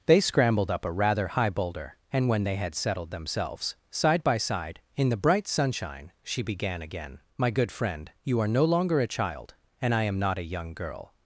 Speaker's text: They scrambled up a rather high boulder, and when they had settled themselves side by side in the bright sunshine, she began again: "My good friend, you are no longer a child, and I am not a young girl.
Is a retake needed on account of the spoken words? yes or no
no